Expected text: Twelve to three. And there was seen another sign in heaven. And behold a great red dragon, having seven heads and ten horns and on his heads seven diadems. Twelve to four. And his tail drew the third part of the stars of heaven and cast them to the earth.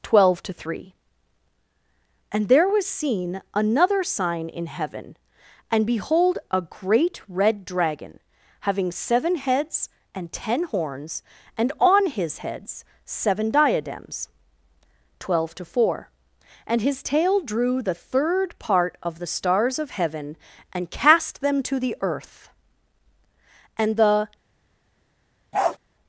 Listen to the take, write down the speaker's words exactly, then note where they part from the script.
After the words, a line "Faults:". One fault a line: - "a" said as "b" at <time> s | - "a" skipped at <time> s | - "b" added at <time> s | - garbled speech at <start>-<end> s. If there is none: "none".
Twelve to three. And there was seen another sign in heaven. And behold a great red dragon, having seven heads and ten horns and on his heads seven diadems. Twelve to four. And his tail drew the third part of the stars of heaven and cast them to the earth. And the
Faults:
- "And the" added at 23.8 s